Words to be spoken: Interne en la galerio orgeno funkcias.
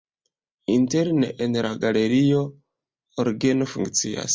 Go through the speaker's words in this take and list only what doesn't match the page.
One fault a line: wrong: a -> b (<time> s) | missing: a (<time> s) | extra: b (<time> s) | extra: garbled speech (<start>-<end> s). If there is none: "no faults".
no faults